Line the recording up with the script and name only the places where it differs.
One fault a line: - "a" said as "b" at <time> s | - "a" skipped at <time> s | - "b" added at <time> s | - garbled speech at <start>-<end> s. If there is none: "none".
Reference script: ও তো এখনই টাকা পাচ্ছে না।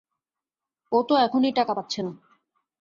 none